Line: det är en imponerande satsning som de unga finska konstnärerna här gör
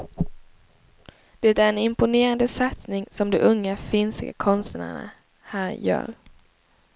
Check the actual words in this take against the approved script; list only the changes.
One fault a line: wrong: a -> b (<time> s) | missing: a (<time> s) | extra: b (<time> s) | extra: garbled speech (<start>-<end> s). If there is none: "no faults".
no faults